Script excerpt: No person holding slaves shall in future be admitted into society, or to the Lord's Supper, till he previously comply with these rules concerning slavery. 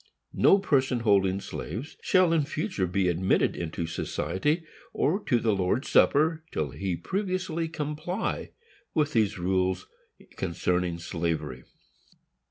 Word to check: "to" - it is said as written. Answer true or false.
true